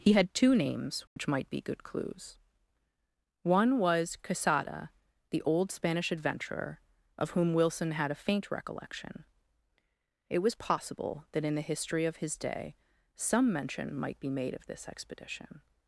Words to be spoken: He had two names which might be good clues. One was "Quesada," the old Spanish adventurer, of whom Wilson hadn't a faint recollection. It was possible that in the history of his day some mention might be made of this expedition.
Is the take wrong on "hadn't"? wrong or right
wrong